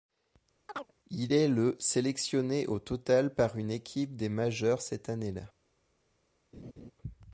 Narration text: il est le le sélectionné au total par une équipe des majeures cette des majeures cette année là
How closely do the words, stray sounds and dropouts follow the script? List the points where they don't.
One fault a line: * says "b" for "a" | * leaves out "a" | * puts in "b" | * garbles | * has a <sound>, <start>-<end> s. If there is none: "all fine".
* has a chirp, 0.7-0.9 s
* leaves out "le"
* leaves out "des majeures cette"
* has a laugh, 6.5-6.9 s